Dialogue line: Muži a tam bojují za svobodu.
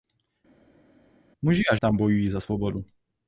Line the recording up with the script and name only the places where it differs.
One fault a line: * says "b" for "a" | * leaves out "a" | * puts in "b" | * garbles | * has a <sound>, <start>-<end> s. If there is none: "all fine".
all fine